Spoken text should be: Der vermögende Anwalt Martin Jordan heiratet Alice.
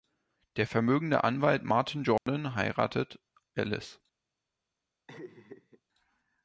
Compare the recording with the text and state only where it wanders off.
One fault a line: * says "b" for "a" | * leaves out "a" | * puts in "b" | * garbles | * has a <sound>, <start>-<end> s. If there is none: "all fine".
* has a dropout, 2.2-2.3 s
* has a laugh, 5.1-5.8 s